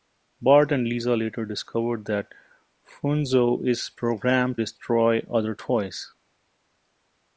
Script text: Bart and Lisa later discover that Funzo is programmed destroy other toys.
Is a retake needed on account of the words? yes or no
no